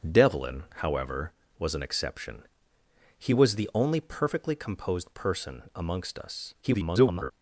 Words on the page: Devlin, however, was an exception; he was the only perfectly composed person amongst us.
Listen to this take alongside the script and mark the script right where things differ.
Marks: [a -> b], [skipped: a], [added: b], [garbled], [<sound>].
Devlin, however, was an exception; he was the only perfectly composed person amongst us. [garbled]